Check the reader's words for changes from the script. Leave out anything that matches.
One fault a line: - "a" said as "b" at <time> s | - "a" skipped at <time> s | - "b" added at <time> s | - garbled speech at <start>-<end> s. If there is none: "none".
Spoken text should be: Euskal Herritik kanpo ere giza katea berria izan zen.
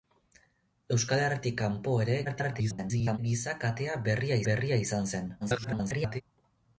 - garbled speech at 2.2-3.2 s
- "berria" added at 4.5 s
- garbled speech at 5.4-6.2 s